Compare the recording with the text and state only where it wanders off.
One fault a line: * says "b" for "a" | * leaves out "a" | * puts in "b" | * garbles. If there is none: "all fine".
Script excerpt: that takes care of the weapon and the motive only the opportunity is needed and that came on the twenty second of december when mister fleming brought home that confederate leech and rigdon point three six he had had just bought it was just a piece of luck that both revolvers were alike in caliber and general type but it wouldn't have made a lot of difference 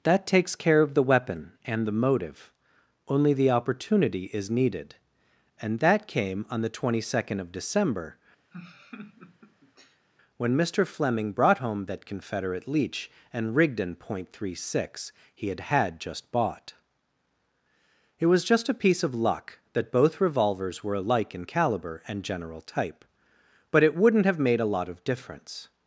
all fine